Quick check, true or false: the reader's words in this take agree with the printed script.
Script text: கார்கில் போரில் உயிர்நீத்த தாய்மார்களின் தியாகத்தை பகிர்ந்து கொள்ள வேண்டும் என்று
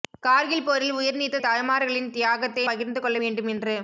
true